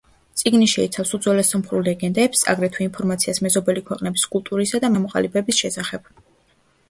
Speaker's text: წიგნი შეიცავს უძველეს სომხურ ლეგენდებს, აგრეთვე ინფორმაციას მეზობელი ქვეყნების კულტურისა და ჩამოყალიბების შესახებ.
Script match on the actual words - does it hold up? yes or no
yes